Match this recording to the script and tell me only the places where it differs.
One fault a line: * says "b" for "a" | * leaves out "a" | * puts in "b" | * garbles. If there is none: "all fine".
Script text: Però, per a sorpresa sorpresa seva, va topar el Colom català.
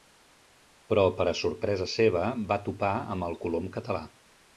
* leaves out "sorpresa"
* puts in "amb"